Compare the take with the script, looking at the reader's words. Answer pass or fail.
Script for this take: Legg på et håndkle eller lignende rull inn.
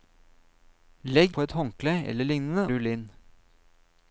pass